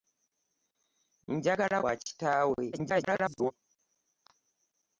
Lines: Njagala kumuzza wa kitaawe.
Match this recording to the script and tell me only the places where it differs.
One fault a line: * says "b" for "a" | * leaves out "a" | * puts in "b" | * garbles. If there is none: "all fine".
* leaves out "kumuzza"
* garbles